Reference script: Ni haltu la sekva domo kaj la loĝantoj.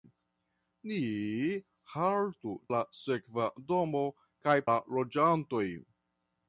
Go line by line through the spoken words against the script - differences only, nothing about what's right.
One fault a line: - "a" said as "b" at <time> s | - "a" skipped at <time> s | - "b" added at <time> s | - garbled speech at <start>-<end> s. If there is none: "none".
none